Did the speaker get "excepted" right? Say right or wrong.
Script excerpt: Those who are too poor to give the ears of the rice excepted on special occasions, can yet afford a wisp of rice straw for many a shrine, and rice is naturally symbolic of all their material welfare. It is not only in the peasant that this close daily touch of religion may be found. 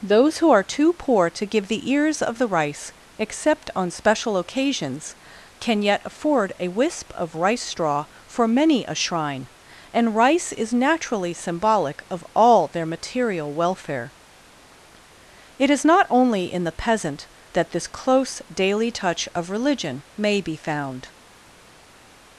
wrong